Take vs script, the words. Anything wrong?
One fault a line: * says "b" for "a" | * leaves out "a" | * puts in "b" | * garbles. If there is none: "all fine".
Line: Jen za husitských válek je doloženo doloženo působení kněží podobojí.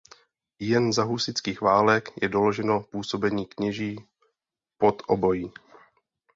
* leaves out "doloženo"